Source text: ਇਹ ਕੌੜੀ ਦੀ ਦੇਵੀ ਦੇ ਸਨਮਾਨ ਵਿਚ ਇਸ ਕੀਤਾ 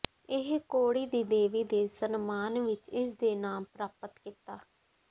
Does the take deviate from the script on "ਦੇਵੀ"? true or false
false